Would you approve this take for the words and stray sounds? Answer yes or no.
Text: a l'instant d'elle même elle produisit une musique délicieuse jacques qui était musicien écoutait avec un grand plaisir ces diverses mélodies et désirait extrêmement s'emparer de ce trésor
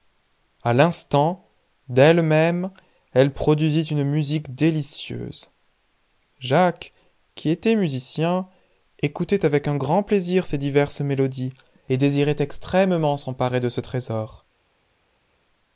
yes